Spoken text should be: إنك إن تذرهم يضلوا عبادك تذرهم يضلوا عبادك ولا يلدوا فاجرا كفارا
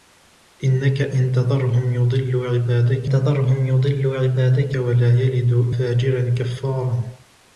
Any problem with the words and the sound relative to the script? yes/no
no